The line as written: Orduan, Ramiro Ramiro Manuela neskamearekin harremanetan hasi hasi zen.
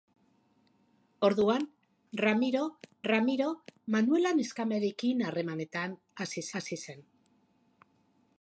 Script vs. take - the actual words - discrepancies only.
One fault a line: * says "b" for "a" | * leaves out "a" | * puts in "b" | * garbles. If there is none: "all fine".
all fine